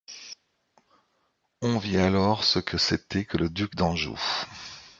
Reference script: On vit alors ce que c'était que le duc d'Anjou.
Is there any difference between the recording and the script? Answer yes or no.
no